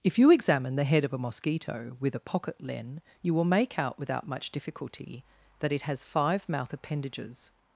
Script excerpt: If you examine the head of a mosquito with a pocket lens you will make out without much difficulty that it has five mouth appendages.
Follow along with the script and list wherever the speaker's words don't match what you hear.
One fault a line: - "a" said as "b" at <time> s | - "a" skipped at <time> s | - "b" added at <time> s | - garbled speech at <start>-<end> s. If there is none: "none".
- "lens" said as "len" at 2.6 s